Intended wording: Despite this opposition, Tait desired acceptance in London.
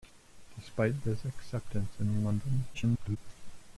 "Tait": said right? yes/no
no